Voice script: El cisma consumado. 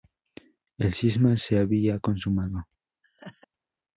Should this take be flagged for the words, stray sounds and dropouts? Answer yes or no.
yes